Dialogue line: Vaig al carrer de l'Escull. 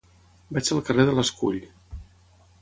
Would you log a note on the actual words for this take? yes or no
no